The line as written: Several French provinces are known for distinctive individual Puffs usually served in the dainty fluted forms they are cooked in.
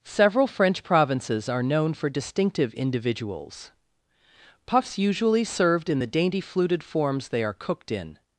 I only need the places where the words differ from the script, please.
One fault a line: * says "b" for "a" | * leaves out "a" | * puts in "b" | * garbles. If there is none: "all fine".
* says "individuals" for "individual"